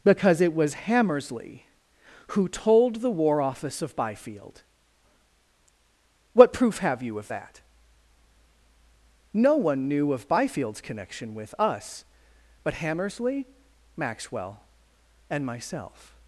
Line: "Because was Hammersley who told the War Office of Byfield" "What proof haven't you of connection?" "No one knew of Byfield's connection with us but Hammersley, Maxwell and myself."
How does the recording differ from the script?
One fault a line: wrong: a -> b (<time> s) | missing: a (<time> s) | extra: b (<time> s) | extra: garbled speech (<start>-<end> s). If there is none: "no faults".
extra: it (0.4 s)
wrong: haven't -> have (6.8 s)
wrong: connection -> that (7.3 s)